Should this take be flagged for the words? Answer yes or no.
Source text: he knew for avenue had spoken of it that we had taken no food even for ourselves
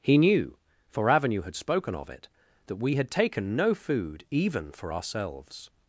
no